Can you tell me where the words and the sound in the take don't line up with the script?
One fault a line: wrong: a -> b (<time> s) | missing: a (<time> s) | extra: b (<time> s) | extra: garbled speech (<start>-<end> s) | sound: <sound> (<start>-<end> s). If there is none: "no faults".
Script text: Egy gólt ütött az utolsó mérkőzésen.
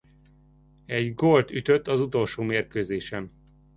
no faults